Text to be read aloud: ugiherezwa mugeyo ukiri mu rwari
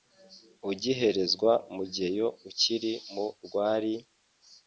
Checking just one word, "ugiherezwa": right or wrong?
right